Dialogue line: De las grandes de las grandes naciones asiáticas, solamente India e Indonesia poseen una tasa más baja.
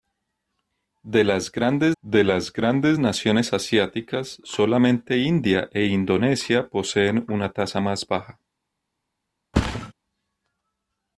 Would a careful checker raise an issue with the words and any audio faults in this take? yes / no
yes